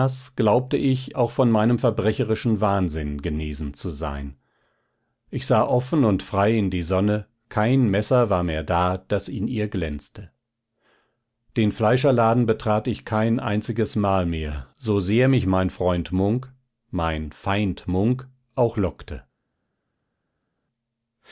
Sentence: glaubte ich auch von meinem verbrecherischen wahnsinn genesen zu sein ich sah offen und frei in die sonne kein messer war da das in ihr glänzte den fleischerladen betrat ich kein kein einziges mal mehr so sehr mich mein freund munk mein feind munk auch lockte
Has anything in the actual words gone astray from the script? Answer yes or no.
yes